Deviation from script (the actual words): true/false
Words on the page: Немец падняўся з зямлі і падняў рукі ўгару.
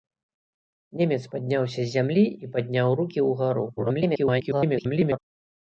true